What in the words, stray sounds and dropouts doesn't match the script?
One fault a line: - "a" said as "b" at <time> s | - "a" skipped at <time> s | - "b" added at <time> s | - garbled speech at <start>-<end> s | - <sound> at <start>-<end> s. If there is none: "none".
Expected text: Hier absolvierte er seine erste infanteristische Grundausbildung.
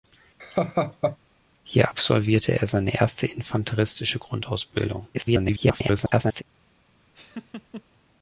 - laugh at 0.4-1.2 s
- garbled speech at 5.1-6.4 s
- laugh at 7.1-7.8 s